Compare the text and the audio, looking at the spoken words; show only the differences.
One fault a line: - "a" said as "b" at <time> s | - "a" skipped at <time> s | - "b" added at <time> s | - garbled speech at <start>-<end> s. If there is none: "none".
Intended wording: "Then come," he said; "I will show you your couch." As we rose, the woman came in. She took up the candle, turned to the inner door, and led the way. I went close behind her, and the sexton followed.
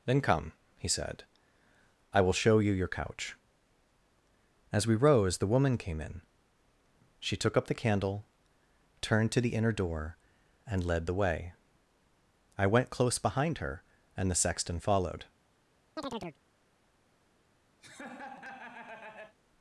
none